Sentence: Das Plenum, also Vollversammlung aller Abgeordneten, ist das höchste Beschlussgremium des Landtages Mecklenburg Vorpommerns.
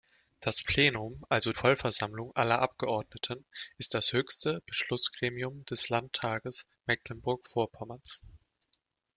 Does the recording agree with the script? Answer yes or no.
yes